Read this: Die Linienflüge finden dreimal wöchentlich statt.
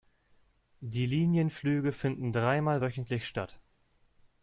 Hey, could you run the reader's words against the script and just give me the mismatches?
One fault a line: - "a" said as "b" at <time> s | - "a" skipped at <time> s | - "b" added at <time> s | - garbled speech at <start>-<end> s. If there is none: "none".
none